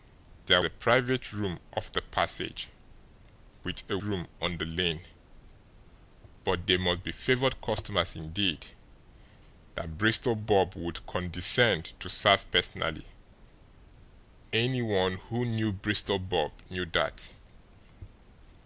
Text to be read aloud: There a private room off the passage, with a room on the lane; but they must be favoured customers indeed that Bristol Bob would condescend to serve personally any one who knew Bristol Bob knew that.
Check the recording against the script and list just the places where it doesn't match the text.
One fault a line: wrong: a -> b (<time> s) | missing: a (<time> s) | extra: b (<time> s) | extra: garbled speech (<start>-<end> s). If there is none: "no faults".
no faults